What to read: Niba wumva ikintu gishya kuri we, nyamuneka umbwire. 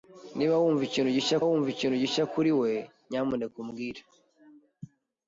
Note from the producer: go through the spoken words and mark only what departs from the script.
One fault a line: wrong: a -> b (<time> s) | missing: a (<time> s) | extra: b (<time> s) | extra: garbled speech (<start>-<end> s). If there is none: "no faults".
extra: wumva ikintu gishya (1.5 s)